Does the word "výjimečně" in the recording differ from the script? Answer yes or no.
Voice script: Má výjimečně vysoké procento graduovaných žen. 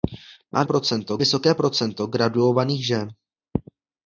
yes